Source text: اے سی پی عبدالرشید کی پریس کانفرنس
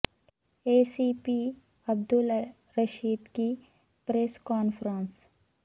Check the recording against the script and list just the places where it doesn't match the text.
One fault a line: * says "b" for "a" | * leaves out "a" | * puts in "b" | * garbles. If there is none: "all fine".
all fine